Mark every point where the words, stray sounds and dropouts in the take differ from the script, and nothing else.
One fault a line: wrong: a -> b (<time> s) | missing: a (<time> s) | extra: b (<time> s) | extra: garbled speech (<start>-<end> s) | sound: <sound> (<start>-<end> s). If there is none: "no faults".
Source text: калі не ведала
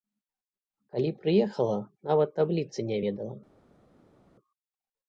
extra: прыехала нават табліцы (1.2 s)